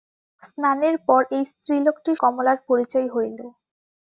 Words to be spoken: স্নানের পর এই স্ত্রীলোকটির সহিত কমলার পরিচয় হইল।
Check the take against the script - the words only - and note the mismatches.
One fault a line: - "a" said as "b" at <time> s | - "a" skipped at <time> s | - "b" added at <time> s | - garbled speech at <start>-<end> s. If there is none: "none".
- "সহিত" skipped at 2.2 s